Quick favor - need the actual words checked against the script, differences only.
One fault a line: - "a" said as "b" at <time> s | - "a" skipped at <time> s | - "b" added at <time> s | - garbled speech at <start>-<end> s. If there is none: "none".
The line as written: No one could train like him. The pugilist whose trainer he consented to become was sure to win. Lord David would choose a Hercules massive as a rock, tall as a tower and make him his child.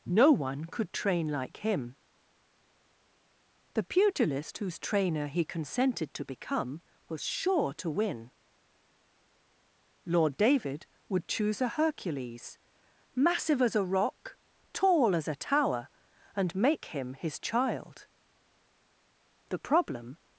- "The problem" added at 19.5 s